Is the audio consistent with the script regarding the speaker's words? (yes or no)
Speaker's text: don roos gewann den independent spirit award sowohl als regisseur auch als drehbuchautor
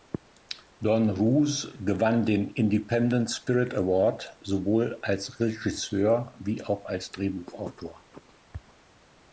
no